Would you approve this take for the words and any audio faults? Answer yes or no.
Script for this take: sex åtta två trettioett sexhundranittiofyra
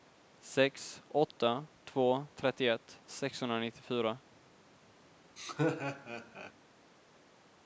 no